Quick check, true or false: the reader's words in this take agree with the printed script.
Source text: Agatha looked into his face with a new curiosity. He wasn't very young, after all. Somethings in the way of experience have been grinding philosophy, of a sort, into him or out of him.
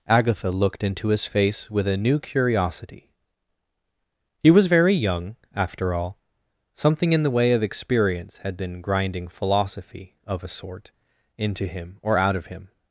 false